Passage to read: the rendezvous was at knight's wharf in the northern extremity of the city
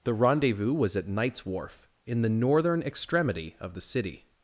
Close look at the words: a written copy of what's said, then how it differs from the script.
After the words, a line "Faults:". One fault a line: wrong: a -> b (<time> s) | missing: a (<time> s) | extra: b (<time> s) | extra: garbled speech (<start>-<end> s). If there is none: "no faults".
the rendezvous was at knight's wharf in the northern extremity of the city
Faults:
no faults